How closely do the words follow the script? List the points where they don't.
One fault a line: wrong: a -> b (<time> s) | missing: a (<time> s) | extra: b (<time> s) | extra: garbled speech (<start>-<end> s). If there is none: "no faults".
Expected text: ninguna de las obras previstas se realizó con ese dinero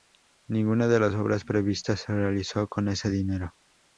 no faults